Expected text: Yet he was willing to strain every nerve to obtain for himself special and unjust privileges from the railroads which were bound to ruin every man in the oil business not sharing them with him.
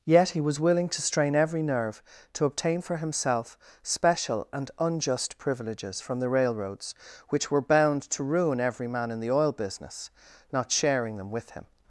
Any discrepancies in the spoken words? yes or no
no